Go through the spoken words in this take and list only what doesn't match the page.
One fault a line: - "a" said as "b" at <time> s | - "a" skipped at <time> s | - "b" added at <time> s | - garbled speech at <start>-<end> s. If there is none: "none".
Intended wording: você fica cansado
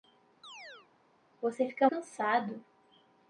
none